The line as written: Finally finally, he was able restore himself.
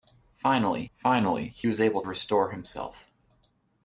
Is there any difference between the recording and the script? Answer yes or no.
no